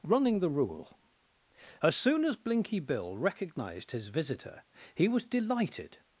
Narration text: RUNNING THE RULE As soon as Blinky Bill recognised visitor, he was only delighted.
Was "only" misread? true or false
true